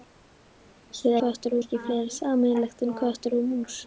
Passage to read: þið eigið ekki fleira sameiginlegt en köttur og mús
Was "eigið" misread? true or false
true